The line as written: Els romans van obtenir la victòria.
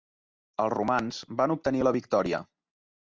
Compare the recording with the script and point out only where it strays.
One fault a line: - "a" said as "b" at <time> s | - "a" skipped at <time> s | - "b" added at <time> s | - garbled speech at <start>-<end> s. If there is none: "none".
none